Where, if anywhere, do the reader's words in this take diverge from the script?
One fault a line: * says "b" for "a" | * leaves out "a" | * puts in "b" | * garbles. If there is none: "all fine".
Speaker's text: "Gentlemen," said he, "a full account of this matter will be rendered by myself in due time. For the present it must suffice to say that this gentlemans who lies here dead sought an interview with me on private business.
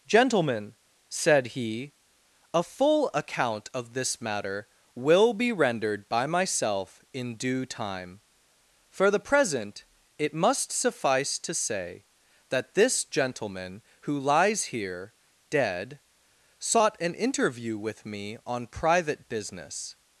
* says "gentleman" for "gentlemans"